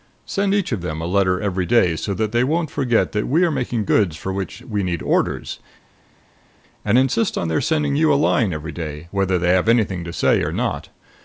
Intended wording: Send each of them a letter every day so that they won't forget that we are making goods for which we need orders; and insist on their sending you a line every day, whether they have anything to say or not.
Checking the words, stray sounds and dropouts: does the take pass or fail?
pass